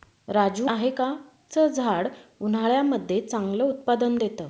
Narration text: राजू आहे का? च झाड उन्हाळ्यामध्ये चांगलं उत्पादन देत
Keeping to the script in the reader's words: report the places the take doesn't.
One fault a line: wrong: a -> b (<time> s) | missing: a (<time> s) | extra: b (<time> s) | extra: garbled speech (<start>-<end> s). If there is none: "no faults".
no faults